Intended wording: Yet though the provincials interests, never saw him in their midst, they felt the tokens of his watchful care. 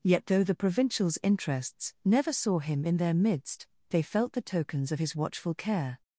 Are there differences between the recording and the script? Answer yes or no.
no